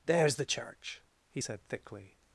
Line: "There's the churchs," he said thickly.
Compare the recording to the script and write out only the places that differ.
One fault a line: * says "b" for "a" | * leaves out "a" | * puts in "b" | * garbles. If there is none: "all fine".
* says "church" for "churchs"